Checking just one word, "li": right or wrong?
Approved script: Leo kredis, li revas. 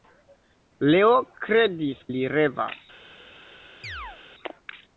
right